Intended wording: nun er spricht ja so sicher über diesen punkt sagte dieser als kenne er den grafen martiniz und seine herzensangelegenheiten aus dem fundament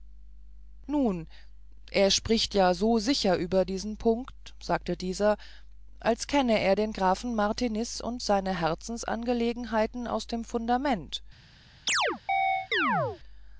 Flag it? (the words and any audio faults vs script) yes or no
yes